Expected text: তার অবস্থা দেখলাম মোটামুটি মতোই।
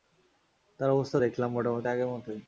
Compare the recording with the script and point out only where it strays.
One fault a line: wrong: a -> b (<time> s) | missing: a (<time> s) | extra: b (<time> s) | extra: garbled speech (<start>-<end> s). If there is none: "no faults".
extra: আগের (1.9 s)